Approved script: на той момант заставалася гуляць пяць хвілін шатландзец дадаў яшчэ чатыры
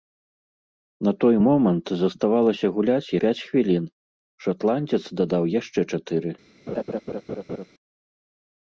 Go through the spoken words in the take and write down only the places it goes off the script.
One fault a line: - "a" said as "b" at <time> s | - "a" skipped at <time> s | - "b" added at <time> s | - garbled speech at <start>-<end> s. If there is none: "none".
none